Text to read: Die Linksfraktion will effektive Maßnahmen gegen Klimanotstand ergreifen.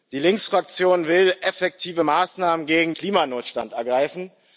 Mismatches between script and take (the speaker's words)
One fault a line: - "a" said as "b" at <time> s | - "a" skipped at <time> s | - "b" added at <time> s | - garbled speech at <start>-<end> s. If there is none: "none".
none